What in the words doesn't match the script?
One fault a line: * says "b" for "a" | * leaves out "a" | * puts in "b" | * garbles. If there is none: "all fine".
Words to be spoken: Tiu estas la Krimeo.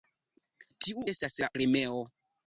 all fine